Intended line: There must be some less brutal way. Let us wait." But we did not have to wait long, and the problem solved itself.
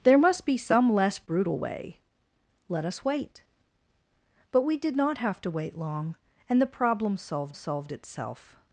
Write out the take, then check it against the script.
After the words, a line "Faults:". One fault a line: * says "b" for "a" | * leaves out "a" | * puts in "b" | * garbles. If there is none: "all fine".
There must be some less brutal way. Let us wait." But we did not have to wait long, and the problem solved solved itself.
Faults:
* puts in "solved"